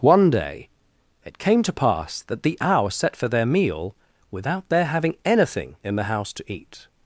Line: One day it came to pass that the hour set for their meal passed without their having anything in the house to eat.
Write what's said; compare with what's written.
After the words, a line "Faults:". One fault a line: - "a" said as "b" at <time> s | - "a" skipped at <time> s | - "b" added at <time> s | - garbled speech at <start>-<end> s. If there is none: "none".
One day it came to pass that the hour set for their meal without their having anything in the house to eat.
Faults:
- "passed" skipped at 4.0 s